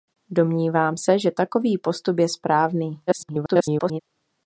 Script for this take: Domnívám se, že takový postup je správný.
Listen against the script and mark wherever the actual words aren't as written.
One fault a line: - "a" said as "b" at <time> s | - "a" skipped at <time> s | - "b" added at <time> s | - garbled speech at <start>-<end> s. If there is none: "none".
- garbled speech at 3.1-4.0 s